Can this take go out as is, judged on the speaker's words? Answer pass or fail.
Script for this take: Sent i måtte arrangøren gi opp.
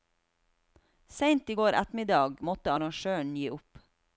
fail